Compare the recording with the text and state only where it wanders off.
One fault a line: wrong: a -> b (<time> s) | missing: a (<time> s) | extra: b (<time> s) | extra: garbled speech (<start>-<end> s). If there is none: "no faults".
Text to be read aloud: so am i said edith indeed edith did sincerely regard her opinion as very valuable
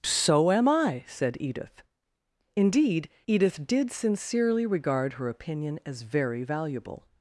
no faults